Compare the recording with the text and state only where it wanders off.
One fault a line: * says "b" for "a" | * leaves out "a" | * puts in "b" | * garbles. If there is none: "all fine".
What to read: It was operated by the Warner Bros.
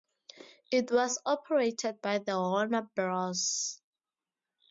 all fine